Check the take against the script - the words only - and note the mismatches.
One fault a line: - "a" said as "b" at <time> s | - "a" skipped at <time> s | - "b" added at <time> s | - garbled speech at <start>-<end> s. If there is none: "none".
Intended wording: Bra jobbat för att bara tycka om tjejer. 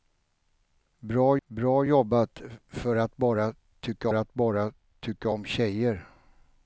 - "bra" added at 1.5 s
- "att bara tycka" added at 4.1 s